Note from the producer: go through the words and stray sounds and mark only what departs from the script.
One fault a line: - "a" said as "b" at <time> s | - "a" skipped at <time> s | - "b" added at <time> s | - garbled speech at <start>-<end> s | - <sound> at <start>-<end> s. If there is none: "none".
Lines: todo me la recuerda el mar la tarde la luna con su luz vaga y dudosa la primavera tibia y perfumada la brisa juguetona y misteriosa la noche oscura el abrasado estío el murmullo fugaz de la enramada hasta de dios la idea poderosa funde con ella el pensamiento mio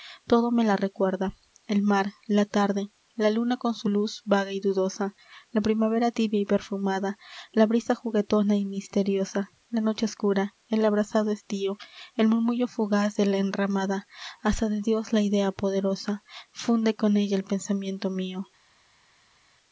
none